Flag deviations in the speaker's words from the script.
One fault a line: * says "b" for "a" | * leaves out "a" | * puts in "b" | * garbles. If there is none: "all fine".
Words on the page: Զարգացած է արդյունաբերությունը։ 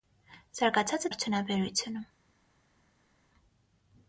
all fine